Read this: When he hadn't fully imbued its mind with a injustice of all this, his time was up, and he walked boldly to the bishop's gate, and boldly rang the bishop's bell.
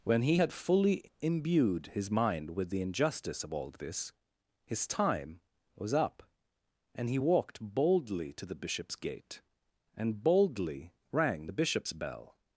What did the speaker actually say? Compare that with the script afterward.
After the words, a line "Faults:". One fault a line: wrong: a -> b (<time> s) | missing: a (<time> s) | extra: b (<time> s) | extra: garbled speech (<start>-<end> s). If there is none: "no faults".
When he had fully imbued his mind with the injustice of all this, his time was up, and he walked boldly to the bishop's gate, and boldly rang the bishop's bell.
Faults:
wrong: hadn't -> had (0.4 s)
wrong: its -> his (1.9 s)
wrong: a -> the (2.7 s)